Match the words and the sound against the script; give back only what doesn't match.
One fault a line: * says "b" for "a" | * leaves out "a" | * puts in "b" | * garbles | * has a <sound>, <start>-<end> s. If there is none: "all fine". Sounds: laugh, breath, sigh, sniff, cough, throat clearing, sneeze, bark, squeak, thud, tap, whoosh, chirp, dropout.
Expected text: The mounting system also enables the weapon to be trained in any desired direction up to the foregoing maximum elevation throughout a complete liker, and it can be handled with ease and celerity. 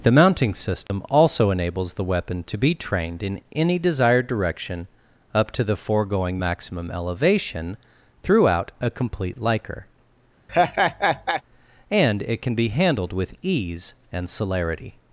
* has a dropout, 0.9-0.9 s
* has a laugh, 10.5-11.4 s